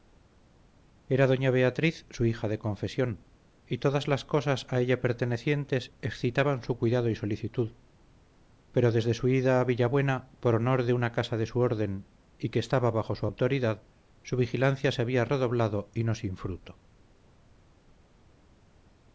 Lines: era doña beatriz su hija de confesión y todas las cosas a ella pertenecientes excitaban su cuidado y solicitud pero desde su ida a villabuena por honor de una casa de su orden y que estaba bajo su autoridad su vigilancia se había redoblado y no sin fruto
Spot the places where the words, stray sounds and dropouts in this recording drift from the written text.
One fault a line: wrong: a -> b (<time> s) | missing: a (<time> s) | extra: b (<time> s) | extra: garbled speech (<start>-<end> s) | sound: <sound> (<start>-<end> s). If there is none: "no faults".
no faults